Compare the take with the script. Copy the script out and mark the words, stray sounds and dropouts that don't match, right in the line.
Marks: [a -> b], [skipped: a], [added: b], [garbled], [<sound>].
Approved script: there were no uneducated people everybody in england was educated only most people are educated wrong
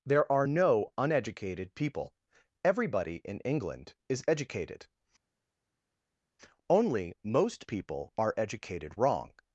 there [were -> are] no uneducated people everybody in england [was -> is] educated only most people are educated wrong